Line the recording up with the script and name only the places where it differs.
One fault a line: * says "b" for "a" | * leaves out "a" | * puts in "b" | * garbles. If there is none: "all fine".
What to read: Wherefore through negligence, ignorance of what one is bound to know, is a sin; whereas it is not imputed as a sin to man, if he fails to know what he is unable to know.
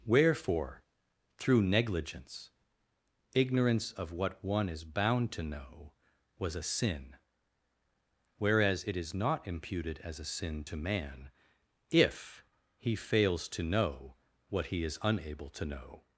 * says "was" for "is"